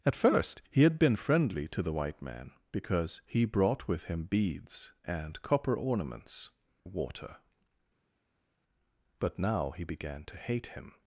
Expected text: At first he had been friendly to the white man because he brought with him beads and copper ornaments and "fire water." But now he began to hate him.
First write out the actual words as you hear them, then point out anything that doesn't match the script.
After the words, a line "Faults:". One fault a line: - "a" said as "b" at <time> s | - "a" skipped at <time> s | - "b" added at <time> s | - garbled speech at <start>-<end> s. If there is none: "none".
At first he had been friendly to the white man because he brought with him beads and copper ornaments water." But now he began to hate him.
Faults:
- "and fire" skipped at 6.5 s